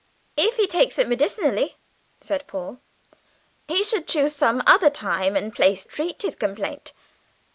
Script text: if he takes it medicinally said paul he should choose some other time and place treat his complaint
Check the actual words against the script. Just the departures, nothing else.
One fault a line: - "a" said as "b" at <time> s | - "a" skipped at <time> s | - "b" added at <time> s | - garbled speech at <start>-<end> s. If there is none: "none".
none